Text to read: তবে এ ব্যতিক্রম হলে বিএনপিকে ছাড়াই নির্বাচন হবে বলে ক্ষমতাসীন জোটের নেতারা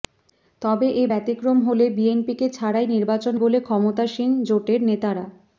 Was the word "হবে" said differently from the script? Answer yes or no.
yes